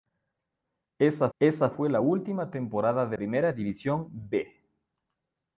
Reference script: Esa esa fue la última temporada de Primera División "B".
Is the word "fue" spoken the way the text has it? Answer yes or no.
yes